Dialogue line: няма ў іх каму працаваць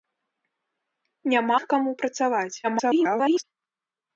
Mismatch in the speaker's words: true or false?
true